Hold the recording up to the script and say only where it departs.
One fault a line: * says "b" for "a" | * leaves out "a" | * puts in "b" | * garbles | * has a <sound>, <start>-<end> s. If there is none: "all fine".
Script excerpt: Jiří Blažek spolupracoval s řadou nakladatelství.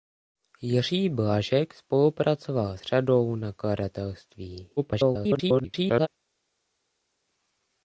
* leaves out "s"
* garbles